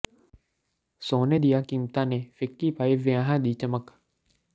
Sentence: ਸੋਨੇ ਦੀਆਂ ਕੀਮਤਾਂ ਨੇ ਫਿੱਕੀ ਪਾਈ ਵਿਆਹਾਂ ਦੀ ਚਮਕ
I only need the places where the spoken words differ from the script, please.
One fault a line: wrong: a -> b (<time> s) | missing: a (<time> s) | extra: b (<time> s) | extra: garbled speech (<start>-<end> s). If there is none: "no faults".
no faults